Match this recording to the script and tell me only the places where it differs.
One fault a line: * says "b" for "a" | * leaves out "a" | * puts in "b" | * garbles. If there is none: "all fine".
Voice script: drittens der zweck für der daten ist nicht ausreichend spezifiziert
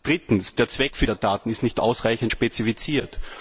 all fine